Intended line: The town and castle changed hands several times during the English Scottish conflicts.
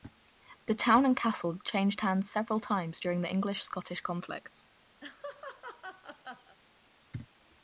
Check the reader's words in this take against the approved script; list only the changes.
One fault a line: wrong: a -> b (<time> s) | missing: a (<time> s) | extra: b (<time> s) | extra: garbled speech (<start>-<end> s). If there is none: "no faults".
no faults